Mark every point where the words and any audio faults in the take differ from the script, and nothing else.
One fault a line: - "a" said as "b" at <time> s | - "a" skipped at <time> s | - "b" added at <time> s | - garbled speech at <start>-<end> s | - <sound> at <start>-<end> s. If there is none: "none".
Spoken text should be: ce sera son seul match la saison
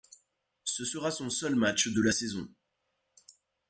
- "de" added at 1.9 s